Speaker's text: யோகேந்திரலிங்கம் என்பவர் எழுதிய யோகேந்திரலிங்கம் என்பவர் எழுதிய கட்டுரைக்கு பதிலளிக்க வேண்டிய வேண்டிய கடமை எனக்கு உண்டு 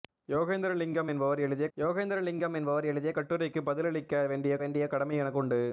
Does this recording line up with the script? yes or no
yes